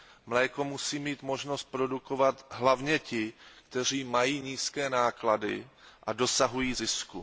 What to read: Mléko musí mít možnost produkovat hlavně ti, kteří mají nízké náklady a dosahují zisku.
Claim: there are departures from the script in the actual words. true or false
false